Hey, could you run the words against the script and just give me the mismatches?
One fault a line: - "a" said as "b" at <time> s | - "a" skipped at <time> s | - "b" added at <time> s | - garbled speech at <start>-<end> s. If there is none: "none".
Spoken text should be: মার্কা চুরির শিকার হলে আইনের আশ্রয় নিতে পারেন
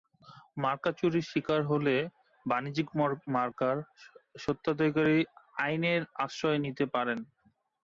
- "বাণিজ্যিক মার্কার স্বত্বাধিকারী" added at 2.5 s